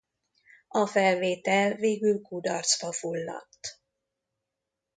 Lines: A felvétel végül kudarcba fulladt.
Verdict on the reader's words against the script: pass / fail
pass